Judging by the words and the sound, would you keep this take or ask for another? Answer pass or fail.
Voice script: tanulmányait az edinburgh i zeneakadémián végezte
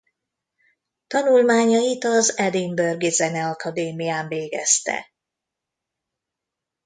pass